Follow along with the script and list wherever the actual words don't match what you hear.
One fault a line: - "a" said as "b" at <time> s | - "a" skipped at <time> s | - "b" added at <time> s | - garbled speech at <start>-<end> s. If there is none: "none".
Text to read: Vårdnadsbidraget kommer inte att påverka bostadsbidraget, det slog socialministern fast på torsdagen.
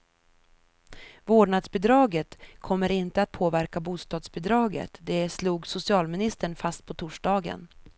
none